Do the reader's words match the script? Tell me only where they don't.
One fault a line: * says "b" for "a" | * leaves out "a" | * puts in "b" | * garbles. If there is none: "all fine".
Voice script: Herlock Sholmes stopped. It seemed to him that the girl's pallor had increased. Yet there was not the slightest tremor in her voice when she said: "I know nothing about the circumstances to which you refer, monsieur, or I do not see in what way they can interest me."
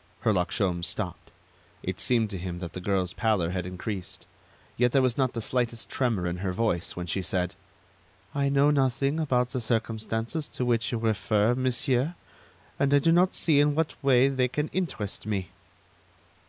* says "and" for "or"